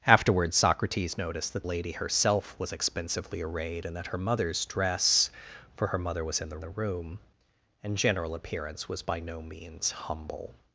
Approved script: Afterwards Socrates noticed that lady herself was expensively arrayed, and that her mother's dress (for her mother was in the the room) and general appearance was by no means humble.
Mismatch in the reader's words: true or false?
false